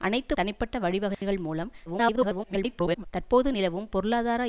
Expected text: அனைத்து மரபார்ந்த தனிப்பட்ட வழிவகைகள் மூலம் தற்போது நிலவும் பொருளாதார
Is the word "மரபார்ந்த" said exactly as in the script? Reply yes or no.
no